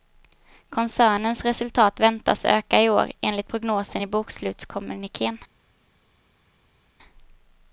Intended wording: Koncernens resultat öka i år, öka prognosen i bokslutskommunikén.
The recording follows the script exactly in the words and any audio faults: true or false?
false